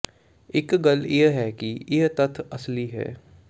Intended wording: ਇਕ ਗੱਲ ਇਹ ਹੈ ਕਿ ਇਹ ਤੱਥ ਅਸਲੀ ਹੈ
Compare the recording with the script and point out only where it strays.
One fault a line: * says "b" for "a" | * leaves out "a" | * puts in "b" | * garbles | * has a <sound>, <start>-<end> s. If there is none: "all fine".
all fine